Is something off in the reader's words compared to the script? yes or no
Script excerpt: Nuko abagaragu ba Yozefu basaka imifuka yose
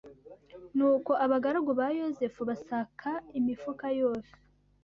no